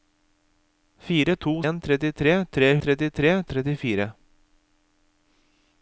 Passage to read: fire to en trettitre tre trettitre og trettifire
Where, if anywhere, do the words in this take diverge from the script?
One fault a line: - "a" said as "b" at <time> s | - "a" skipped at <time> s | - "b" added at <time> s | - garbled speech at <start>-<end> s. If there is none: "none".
none